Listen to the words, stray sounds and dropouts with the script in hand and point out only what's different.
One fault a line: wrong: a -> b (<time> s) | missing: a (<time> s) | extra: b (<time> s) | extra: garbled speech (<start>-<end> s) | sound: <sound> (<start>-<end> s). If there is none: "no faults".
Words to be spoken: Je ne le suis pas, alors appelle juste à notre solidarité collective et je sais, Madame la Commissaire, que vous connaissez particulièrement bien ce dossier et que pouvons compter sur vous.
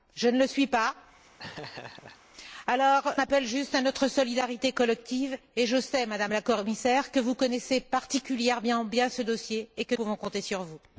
sound: laugh (1.4-2.2 s)